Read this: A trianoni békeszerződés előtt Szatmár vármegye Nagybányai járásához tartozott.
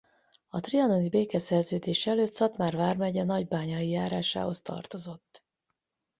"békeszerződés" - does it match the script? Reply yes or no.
yes